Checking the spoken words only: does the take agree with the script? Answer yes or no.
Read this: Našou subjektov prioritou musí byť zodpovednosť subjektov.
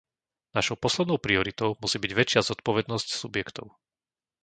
no